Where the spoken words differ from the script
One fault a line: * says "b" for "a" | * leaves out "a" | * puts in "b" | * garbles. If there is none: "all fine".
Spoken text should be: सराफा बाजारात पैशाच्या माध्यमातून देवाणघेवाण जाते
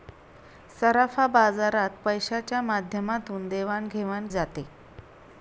all fine